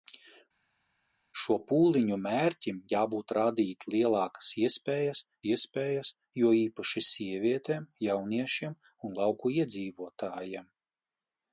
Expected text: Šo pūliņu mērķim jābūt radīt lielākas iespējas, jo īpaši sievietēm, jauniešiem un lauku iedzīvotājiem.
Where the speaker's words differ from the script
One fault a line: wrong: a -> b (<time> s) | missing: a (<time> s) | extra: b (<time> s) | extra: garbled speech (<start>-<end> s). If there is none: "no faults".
extra: iespējas (5.5 s)